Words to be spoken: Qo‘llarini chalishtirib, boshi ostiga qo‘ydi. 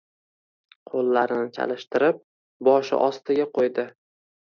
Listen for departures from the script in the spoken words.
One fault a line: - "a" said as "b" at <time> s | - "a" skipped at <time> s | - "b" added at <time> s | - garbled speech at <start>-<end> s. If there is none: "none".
none